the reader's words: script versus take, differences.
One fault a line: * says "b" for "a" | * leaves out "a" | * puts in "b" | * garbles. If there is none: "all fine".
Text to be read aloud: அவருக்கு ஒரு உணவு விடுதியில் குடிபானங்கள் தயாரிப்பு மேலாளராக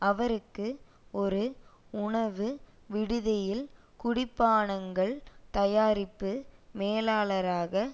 all fine